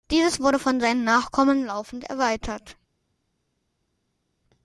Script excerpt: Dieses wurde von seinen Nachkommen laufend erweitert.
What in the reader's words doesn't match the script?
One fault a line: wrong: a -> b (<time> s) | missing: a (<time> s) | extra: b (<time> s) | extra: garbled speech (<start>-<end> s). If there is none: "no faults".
no faults